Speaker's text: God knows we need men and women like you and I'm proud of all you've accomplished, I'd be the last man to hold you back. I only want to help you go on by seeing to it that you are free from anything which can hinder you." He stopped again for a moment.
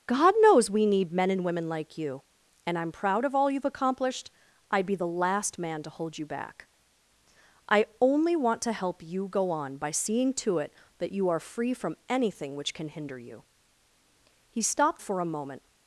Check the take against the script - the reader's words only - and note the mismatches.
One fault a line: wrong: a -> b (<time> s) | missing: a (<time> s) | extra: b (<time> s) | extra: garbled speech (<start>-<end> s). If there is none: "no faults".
missing: again (15.0 s)